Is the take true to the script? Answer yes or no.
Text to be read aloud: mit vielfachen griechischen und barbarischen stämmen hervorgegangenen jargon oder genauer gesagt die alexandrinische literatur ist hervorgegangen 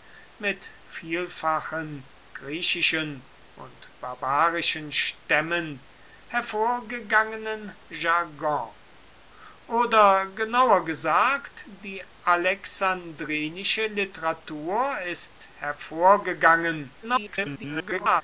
no